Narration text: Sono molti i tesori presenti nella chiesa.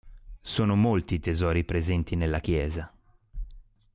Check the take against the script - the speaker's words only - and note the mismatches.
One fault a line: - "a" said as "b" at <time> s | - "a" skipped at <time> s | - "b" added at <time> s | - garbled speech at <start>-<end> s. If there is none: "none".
none